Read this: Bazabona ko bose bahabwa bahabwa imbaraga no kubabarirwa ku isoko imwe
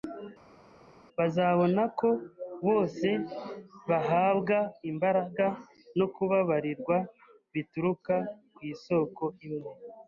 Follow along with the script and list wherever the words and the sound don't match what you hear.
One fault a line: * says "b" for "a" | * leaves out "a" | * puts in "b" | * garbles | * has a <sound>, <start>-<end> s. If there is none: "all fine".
* leaves out "bahabwa"
* puts in "bituruka"